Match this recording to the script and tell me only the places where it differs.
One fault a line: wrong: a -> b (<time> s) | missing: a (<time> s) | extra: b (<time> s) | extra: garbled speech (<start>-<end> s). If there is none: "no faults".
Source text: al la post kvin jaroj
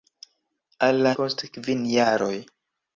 no faults